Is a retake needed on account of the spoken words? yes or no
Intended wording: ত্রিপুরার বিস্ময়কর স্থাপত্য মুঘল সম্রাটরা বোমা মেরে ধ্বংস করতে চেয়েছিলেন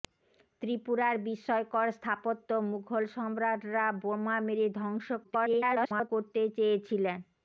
yes